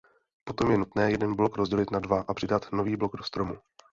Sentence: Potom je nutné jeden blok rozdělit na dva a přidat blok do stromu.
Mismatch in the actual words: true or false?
true